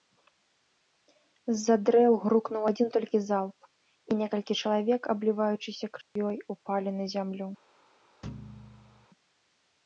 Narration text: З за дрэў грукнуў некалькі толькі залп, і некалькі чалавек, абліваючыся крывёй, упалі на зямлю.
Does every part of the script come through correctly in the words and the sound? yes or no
no